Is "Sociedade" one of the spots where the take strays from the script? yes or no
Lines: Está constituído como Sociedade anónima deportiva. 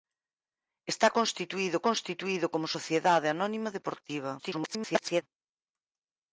no